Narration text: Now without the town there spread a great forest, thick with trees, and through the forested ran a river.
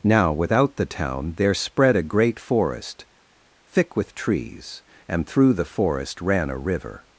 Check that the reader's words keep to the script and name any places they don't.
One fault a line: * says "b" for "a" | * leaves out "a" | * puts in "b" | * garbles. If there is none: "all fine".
* says "forest" for "forested"